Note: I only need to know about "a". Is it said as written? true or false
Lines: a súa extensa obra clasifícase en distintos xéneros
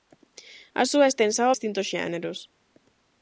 true